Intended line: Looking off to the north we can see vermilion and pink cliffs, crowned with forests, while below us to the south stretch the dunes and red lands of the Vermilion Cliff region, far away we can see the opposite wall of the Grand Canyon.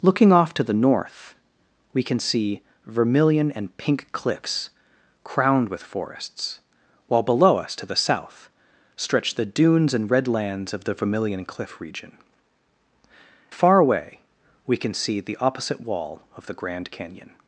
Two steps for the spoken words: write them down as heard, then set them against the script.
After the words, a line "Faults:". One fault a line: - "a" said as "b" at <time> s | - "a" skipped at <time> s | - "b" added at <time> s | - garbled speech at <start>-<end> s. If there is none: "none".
Looking off to the north we can see vermilion and pink cliffs, crowned with forests, while below us to the south stretch the dunes and red lands of the Vermilion Cliff region, far away we can see the opposite wall of the Grand Canyon.
Faults:
none